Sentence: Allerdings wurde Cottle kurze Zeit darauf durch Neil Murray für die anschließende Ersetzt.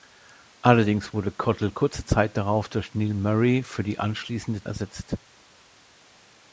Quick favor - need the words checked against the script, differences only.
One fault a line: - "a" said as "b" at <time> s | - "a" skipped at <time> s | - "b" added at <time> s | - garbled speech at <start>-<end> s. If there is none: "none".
none